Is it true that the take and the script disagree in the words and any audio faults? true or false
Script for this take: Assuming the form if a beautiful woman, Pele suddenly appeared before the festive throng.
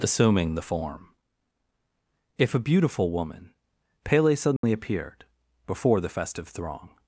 true